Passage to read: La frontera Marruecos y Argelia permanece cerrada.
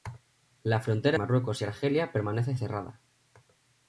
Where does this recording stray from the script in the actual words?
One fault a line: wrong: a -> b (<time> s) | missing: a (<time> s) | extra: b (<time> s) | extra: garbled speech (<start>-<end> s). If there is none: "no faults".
no faults